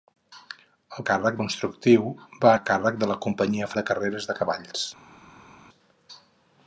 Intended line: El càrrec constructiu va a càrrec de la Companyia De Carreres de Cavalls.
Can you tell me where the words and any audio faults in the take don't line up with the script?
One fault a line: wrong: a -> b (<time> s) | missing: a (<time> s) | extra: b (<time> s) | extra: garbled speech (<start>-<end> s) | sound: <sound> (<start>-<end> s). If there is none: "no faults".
no faults